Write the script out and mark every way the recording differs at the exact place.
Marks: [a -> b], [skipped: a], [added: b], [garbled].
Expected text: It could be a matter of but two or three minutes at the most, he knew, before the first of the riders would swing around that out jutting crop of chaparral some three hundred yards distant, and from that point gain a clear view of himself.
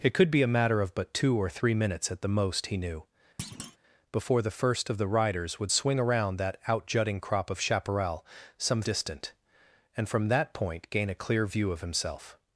It could be a matter of but two or three minutes at the most, he knew, before the first of the riders would swing around that out jutting crop of chaparral some [skipped: three hundred yards] distant, and from that point gain a clear view of himself.